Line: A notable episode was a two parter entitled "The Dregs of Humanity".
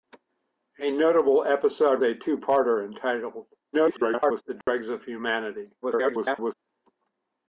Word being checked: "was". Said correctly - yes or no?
no